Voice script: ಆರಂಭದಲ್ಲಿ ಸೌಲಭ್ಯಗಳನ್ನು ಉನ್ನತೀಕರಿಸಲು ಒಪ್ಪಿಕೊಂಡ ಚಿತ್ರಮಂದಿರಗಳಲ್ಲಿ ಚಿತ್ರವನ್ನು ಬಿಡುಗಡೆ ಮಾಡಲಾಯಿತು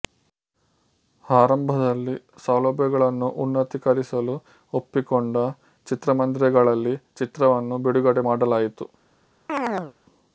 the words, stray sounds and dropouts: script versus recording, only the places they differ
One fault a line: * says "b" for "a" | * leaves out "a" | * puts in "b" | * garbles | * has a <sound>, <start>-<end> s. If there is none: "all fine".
* has a chirp, 9.5-9.9 s